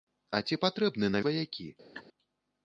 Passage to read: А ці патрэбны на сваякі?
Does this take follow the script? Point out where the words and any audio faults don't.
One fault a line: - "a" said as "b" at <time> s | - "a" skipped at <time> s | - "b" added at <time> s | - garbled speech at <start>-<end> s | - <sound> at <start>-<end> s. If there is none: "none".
- laugh at 1.9-2.0 s